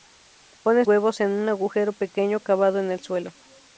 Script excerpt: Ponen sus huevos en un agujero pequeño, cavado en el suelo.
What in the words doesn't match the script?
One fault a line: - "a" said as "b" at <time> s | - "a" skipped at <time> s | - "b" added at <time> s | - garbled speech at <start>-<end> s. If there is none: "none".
- "sus" skipped at 0.9 s